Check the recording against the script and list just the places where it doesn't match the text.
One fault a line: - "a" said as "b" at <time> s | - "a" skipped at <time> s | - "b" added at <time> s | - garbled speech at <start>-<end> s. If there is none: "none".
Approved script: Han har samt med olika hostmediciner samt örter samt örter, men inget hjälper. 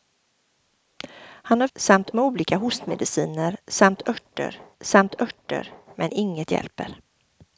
none